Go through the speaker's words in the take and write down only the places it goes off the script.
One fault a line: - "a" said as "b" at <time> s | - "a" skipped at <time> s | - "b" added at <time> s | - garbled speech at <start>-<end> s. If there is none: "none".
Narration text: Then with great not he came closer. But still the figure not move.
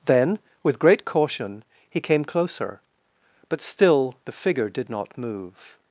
- "not" said as "caution" at 1.1 s
- "did" added at 4.7 s